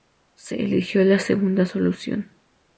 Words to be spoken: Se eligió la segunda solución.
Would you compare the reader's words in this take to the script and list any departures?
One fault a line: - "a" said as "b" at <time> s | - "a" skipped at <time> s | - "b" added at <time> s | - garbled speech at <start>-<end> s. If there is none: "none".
none